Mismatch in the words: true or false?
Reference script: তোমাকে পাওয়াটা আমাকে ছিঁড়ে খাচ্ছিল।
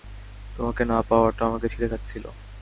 true